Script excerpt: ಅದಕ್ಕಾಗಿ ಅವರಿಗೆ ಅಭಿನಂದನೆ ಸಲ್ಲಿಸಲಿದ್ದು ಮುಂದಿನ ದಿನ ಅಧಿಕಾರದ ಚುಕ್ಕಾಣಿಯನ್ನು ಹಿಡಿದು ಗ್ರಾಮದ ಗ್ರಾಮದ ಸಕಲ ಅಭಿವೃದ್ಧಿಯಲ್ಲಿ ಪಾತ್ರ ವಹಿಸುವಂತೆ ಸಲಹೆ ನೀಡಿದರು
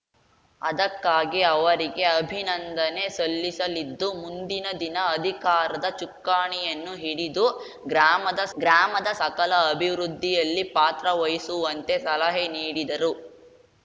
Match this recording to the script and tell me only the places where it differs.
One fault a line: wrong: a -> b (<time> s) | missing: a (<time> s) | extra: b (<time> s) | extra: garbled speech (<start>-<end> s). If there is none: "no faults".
no faults